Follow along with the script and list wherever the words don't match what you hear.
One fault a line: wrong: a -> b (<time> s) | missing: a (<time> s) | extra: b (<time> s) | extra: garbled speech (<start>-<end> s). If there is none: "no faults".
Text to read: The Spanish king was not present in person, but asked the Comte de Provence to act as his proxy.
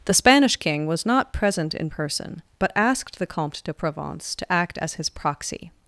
no faults